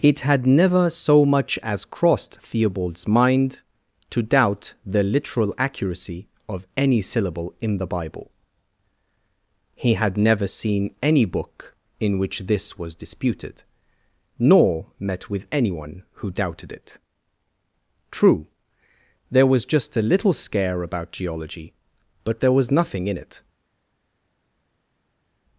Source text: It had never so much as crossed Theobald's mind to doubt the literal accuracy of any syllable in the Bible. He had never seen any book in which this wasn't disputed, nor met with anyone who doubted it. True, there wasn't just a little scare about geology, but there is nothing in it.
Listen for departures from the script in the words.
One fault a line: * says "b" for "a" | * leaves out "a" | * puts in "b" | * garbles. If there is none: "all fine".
* says "was" for "wasn't"
* says "was" for "wasn't"
* says "was" for "is"